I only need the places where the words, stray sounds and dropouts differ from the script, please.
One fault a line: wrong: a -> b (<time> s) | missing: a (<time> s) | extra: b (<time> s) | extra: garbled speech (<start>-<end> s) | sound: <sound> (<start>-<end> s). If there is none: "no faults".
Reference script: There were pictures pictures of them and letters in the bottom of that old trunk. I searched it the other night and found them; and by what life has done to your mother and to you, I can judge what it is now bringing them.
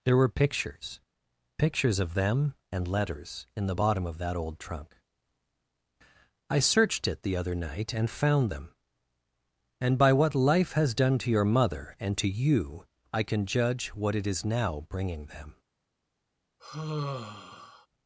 sound: sigh (16.6-17.9 s)